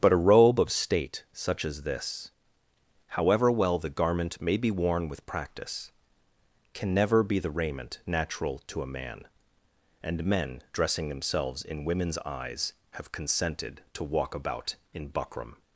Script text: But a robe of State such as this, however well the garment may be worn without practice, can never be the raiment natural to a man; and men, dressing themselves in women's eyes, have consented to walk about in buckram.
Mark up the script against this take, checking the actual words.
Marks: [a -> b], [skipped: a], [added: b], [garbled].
But a robe of State such as this, however well the garment may be worn [without -> with] practice, can never be the raiment natural to a man; and men, dressing themselves in women's eyes, have consented to walk about in buckram.